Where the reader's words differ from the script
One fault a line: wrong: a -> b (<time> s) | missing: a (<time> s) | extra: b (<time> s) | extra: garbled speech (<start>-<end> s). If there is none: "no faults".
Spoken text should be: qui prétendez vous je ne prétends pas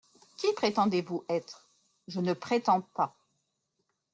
extra: être (1.3 s)